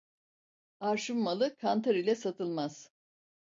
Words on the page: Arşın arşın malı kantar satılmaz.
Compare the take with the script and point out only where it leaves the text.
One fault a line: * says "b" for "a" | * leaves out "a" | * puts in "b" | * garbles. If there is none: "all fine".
* leaves out "arşın"
* puts in "ile"